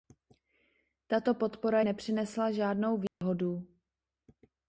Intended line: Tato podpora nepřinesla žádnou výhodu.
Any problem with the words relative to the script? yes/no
no